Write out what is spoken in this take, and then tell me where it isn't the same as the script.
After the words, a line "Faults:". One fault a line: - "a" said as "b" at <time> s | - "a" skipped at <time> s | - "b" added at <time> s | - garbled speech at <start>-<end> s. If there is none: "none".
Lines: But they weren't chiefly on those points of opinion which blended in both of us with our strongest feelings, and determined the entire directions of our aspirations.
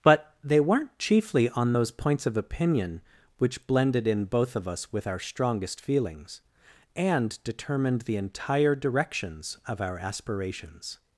But they weren't chiefly on those points of opinion which blended in both of us with our strongest feelings, and determined the entire directions of our aspirations.
Faults:
none